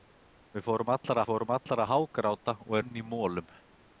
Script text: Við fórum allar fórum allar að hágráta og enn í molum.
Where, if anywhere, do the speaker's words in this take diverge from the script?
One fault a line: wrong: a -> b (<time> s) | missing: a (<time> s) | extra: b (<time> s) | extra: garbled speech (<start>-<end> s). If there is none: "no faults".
no faults